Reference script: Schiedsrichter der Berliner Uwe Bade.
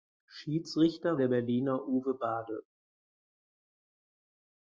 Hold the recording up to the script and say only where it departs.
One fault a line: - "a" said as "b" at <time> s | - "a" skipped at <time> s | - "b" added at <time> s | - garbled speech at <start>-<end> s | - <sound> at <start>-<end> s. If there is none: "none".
none